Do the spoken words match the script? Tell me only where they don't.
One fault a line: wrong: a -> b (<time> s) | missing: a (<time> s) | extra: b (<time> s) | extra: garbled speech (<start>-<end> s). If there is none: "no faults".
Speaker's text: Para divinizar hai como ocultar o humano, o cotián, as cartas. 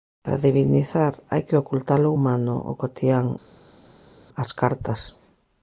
wrong: como -> que (1.5 s)